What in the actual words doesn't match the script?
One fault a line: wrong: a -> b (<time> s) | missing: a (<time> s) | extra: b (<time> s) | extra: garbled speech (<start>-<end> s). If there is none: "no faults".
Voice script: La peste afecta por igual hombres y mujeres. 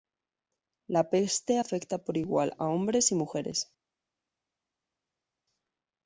extra: a (2.6 s)